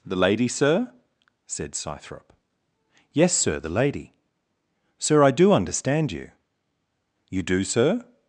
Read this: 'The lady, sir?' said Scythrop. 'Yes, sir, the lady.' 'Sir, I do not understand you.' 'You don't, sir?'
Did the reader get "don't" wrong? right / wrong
wrong